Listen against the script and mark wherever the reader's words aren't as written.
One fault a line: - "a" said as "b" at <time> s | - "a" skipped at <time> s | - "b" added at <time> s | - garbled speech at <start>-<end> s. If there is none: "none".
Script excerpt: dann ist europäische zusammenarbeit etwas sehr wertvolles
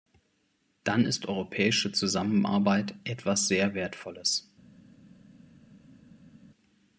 none